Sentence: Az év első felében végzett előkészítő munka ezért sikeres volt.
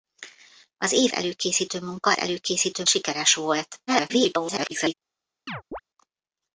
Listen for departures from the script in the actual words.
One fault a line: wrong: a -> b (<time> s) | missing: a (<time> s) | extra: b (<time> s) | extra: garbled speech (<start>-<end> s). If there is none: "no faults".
missing: első felében végzett (1.1 s)
wrong: ezért -> előkészítő (2.2 s)
extra: garbled speech (3.9-4.9 s)